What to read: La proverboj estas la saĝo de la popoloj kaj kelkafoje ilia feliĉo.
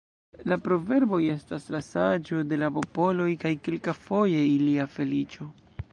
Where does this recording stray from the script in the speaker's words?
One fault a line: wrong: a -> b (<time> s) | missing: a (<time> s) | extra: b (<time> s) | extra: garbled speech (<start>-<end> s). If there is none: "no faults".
no faults